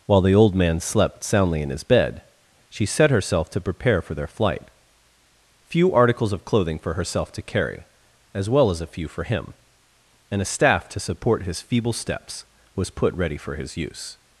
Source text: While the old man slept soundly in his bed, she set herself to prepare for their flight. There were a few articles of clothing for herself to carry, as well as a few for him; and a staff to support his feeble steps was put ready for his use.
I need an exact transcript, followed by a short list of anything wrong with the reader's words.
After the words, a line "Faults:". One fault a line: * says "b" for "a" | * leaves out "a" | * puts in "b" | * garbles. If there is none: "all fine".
While the old man slept soundly in his bed, she set herself to prepare for their flight. few articles of clothing for herself to carry, as well as a few for him; and a staff to support his feeble steps was put ready for his use.
Faults:
* leaves out "There were a"